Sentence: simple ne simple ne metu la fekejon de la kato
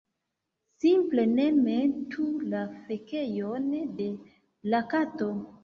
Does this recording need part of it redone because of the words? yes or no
yes